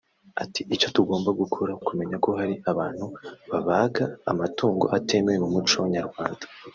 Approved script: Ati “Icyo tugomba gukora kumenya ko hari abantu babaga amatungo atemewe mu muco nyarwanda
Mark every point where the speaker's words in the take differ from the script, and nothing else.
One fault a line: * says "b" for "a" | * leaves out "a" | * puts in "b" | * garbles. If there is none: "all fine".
all fine